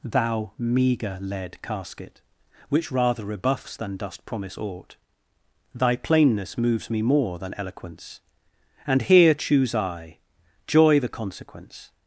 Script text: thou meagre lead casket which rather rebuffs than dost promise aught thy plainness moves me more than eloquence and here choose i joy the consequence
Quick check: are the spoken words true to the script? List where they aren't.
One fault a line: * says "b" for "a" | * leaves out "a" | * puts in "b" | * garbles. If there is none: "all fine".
all fine